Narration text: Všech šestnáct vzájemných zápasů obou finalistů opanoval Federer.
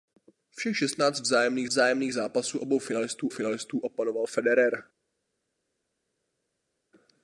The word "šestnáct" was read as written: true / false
true